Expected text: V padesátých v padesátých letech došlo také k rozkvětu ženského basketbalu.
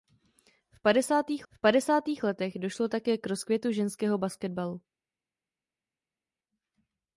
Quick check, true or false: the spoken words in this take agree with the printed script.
true